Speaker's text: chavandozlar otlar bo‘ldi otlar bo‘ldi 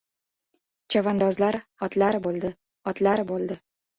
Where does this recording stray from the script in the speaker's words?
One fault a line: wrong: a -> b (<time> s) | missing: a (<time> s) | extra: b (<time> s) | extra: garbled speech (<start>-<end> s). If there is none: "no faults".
no faults